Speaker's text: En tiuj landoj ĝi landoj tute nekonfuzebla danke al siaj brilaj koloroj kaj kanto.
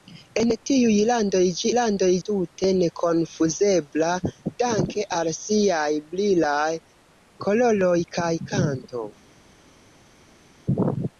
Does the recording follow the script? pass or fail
pass